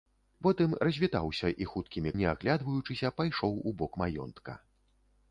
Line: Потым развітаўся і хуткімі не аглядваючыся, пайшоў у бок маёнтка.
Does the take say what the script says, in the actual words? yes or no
yes